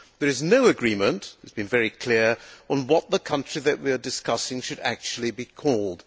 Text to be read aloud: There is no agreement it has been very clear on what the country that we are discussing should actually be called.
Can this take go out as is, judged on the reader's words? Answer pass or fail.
pass